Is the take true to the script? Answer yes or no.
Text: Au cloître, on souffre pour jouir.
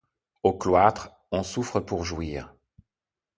yes